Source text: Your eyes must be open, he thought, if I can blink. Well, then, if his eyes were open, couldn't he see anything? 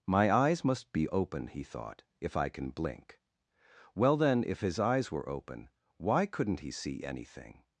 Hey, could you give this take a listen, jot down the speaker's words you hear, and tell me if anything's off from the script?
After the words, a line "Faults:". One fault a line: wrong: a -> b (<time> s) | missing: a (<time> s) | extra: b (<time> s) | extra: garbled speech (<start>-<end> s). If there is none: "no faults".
My eyes must be open, he thought, if I can blink. Well, then, if his eyes were open, why couldn't he see anything?
Faults:
wrong: Your -> My (0.1 s)
extra: why (6.0 s)